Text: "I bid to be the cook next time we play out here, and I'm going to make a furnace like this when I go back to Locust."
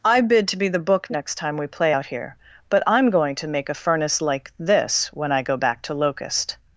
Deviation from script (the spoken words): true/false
true